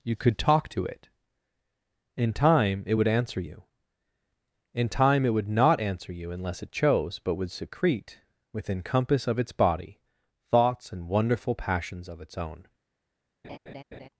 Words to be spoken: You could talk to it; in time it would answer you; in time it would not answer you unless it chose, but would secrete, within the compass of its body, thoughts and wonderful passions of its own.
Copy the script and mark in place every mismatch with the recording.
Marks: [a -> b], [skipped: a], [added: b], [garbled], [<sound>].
You could talk to it; in time it would answer you; in time it would not answer you unless it chose, but would secrete, within [skipped: the] compass of its body, thoughts and wonderful passions of its own. [laugh]